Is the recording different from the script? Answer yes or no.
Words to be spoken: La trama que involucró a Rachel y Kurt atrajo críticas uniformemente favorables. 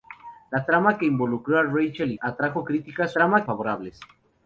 yes